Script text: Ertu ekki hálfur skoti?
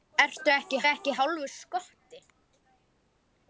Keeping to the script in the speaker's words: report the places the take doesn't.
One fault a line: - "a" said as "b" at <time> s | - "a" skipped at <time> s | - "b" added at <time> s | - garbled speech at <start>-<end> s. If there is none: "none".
- "ekki" added at 0.9 s